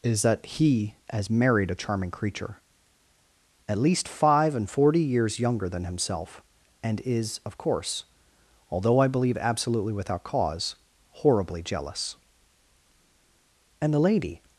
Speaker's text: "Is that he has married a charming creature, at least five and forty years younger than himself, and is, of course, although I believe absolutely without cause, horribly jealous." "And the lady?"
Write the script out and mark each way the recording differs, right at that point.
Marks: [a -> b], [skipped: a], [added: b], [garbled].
"Is that he has married a charming creature, at least five and forty years younger than himself, and is, of course, although I believe absolutely without cause, horribly jealous." "And the lady?"